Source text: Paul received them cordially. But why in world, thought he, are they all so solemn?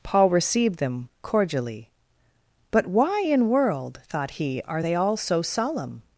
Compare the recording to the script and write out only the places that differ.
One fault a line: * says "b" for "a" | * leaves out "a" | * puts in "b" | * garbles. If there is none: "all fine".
all fine